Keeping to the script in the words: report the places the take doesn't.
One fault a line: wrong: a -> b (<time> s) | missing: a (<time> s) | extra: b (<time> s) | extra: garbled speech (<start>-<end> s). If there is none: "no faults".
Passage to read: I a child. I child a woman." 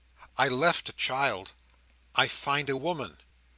extra: left (0.5 s)
wrong: child -> find (2.3 s)